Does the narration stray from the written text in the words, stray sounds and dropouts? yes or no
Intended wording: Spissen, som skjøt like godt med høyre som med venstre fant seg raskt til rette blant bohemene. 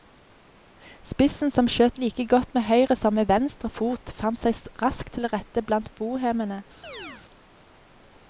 yes